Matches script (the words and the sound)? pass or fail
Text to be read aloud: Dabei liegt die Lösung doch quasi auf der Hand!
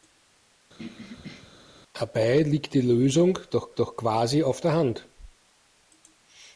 fail